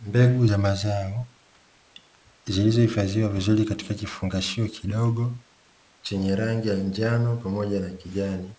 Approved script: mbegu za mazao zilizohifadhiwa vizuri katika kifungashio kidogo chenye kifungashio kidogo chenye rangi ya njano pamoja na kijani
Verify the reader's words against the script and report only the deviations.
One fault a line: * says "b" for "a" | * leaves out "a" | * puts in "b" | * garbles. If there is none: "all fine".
* leaves out "kifungashio kidogo chenye"